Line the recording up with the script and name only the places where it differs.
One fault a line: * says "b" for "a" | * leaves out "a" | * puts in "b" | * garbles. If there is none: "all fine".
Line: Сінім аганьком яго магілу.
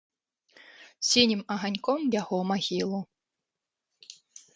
all fine